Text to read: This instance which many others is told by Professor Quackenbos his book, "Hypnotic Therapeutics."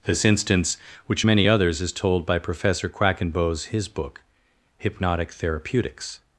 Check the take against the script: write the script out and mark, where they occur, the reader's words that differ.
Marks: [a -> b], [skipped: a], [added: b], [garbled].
This instance which many others is told by Professor Quackenbos his book, "Hypnotic Therapeutics."